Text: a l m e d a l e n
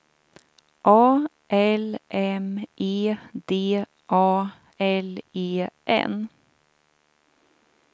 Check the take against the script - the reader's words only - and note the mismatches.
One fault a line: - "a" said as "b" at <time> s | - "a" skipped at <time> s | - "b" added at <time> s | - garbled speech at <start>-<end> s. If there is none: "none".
none